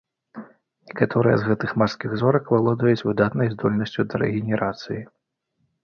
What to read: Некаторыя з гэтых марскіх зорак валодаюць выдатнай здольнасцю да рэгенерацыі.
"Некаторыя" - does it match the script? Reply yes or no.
yes